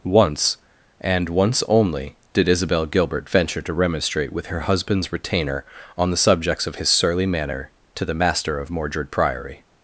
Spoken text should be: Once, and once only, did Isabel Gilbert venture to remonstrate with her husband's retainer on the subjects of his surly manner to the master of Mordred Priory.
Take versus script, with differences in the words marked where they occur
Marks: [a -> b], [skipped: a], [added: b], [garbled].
Once, and once only, did Isabel Gilbert venture to remonstrate with her husband's retainer on the subjects of his surly manner to the master of Mordred Priory.